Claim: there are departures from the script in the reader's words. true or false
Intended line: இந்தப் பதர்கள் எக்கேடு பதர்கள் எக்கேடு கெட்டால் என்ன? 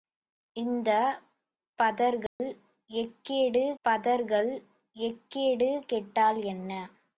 false